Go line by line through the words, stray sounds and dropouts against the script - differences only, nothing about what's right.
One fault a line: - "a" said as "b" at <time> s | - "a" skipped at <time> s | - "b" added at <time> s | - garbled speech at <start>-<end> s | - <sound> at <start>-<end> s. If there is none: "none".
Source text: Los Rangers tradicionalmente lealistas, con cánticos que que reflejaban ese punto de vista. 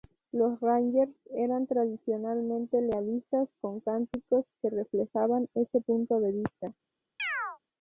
- "eran" added at 1.4 s
- "que" skipped at 4.7 s
- chirp at 7.2-7.6 s